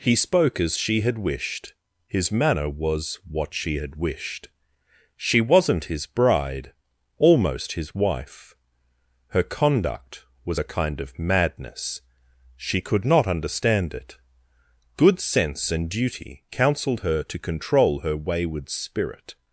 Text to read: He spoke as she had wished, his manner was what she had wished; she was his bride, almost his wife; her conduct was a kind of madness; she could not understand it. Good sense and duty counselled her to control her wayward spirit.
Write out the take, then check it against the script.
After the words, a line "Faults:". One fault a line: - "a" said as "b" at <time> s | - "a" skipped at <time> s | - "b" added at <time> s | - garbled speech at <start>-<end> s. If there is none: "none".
He spoke as she had wished, his manner was what she had wished; she wasn't his bride, almost his wife; her conduct was a kind of madness; she could not understand it. Good sense and duty counselled her to control her wayward spirit.
Faults:
- "was" said as "wasn't" at 5.4 s